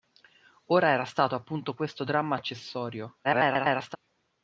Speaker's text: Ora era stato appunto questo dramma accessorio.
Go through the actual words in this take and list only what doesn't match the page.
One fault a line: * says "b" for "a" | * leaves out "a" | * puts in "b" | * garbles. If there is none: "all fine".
* garbles